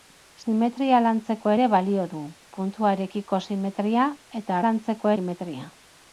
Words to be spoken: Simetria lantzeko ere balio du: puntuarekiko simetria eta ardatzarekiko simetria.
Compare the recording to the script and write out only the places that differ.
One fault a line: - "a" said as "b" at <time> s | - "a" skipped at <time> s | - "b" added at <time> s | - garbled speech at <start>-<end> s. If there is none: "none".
- "ardatzarekiko" said as "lantzeko" at 4.6 s